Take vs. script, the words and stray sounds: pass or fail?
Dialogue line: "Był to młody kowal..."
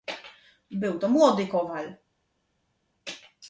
pass